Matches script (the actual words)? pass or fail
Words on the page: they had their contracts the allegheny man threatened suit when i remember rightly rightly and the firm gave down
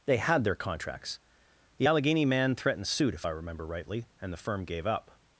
fail